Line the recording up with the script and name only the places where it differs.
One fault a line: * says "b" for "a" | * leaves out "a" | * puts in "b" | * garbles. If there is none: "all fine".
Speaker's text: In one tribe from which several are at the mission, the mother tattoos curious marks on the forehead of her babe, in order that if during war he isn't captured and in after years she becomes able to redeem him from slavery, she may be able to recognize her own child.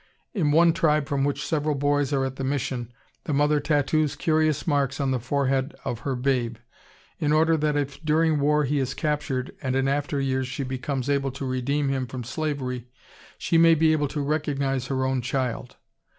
* puts in "boys"
* says "is" for "isn't"